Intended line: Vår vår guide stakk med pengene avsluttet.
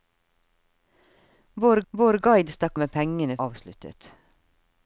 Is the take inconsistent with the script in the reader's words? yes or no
no